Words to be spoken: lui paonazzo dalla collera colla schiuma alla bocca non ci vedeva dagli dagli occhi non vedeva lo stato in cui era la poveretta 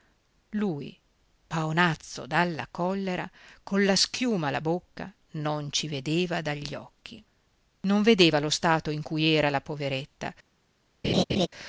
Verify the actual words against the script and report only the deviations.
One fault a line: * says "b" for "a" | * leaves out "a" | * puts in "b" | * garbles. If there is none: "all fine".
* leaves out "dagli"